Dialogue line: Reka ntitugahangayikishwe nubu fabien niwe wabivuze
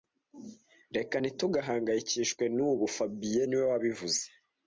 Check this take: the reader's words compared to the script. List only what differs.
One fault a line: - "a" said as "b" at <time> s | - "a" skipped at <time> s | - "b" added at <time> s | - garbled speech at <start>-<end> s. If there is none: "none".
none